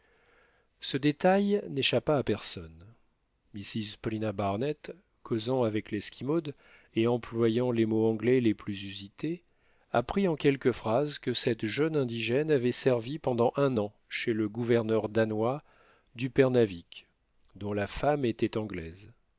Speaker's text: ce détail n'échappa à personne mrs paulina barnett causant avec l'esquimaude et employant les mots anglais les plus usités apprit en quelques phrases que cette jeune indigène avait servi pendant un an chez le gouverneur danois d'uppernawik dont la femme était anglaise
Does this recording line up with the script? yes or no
yes